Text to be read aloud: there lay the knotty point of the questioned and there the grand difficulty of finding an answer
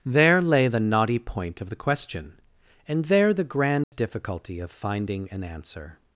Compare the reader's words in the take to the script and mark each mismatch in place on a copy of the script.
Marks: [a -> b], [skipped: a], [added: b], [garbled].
there lay the knotty point of the [questioned -> question] and there the grand difficulty of finding an answer